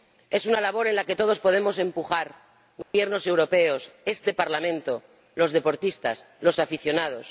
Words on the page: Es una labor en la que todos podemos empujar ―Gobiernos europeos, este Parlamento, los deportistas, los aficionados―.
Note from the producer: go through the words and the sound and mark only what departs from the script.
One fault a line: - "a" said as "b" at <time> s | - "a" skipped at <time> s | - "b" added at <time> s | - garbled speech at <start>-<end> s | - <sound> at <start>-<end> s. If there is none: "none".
- dropout at 2.8-2.9 s